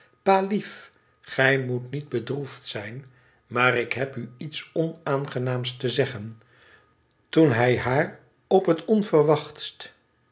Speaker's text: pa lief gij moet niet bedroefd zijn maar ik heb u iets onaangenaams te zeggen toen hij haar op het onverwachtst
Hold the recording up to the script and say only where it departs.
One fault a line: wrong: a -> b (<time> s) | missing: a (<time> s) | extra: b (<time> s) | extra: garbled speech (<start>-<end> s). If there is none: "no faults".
no faults